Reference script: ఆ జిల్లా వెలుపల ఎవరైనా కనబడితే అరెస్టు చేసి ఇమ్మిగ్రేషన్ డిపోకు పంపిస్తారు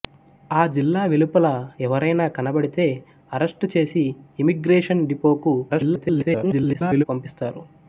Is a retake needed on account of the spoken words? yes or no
yes